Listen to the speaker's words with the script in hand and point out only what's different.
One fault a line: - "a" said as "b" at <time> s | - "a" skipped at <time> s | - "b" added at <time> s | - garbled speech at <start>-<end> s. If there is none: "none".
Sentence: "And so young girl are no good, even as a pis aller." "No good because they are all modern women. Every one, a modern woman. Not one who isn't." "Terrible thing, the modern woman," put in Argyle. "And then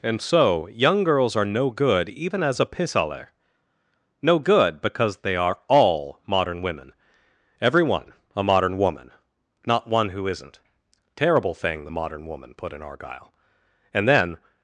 - "girl" said as "girls" at 1.0 s